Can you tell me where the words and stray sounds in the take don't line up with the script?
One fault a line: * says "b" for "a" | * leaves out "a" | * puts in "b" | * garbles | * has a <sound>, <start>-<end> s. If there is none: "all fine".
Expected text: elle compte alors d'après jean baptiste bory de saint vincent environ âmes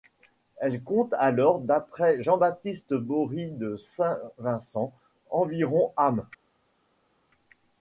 all fine